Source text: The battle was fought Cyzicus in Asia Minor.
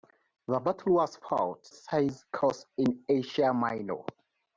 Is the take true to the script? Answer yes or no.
yes